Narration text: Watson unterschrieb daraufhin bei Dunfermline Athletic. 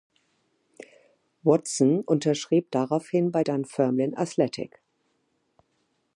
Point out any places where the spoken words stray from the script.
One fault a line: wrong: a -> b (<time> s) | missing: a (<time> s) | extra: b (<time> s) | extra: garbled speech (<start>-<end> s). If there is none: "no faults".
no faults